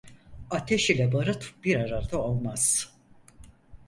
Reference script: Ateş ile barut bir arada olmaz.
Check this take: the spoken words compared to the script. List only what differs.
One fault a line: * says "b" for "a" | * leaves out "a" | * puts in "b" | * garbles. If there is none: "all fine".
all fine